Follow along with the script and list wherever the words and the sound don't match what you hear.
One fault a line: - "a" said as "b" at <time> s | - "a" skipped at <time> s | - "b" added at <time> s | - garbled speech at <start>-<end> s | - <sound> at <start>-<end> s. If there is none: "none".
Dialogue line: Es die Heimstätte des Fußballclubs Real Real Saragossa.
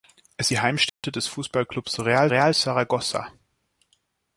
- dropout at 0.9-1.0 s